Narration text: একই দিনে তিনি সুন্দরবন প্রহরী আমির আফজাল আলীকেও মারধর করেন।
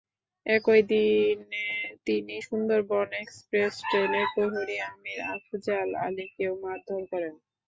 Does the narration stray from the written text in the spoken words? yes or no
yes